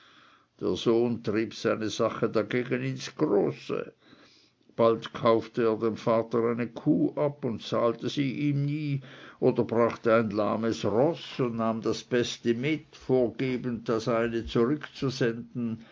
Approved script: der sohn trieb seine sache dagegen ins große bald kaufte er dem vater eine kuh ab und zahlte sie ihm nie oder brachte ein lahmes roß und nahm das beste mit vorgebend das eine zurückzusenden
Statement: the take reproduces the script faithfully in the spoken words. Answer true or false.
true